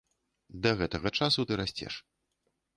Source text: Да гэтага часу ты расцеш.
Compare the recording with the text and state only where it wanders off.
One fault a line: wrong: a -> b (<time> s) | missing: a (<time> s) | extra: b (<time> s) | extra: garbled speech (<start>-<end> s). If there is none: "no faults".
no faults